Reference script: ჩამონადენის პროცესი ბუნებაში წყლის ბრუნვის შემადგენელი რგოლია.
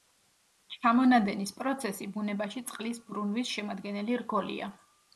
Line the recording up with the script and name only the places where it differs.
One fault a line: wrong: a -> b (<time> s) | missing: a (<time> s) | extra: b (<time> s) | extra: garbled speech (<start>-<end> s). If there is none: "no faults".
no faults